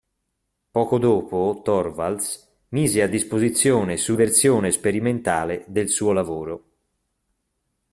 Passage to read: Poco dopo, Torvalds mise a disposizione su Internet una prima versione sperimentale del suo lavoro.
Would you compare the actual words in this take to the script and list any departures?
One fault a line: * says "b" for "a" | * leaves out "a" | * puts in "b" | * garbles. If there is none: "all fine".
* leaves out "Internet una prima"